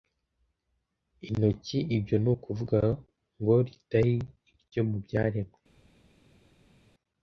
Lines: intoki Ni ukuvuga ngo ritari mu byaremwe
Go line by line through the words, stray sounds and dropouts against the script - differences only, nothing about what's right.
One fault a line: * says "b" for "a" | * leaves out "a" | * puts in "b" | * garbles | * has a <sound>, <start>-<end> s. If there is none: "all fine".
* puts in "Ibyo"
* puts in "iryo"